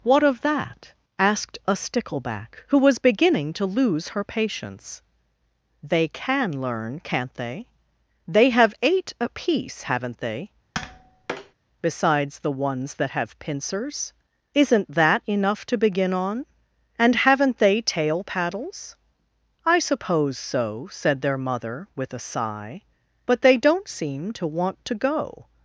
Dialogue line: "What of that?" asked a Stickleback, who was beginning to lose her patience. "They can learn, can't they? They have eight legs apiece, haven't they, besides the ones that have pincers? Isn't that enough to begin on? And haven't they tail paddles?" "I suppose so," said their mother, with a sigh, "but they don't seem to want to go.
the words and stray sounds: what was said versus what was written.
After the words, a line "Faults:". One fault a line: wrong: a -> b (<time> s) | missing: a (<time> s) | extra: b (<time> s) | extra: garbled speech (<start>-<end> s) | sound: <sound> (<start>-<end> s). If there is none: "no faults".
"What of that?" asked a Stickleback, who was beginning to lose her patience. "They can learn, can't they? They have eight apiece, haven't they, besides the ones that have pincers? Isn't that enough to begin on? And haven't they tail paddles?" "I suppose so," said their mother, with a sigh, "but they don't seem to want to go.
Faults:
missing: legs (9.1 s)
sound: tap (10.7-11.5 s)